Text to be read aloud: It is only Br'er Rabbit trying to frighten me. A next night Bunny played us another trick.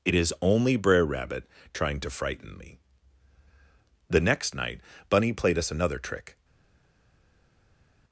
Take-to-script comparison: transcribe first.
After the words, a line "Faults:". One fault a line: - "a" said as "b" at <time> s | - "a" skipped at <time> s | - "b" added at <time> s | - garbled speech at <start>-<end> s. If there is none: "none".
It is only Br'er Rabbit trying to frighten me. The next night Bunny played us another trick.
Faults:
- "A" said as "The" at 4.1 s